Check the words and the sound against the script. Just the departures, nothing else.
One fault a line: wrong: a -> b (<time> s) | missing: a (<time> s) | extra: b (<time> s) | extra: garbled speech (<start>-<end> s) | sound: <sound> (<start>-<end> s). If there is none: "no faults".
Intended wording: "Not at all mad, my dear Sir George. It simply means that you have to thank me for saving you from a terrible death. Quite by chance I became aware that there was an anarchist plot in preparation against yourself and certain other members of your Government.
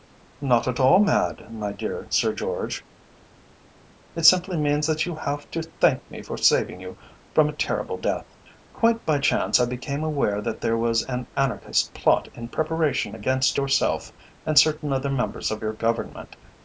no faults